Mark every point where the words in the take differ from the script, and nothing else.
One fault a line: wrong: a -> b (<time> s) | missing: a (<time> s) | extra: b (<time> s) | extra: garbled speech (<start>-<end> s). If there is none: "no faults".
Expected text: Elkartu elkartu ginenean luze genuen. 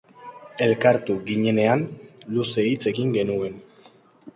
missing: elkartu (1.2 s)
extra: hitz egin (2.7 s)